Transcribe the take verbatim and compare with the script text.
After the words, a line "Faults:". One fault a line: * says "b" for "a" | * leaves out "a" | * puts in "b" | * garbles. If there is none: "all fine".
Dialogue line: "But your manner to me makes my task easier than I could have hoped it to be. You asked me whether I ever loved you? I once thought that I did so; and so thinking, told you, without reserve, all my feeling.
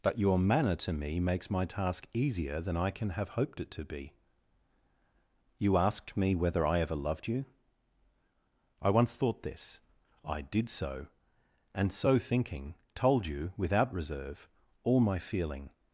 "But your manner to me makes my task easier than I can have hoped it to be. You asked me whether I ever loved you? I once thought this I did so; and so thinking, told you, without reserve, all my feeling.
Faults:
* says "can" for "could"
* says "this" for "that"